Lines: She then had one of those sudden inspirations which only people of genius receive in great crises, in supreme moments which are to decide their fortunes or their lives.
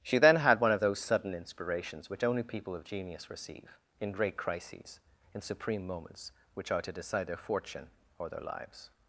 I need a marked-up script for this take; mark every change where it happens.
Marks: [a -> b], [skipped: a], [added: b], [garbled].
She then had one of those sudden inspirations which only people of genius receive in great crises, in supreme moments which are to decide their [fortunes -> fortune] or their lives.